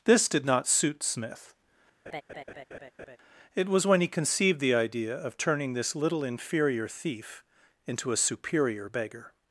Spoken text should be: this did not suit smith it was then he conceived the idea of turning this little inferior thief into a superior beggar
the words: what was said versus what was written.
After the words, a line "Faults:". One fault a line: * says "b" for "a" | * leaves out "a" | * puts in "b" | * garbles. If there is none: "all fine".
this did not suit smith it was when he conceived the idea of turning this little inferior thief into a superior beggar
Faults:
* says "when" for "then"